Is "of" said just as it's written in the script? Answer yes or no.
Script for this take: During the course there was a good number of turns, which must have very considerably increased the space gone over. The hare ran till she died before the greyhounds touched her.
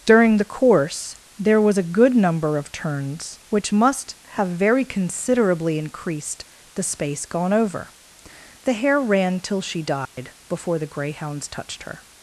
yes